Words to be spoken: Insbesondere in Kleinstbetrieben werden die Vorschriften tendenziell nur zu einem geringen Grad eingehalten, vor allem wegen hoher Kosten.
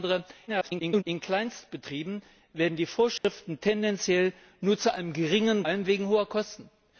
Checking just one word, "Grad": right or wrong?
wrong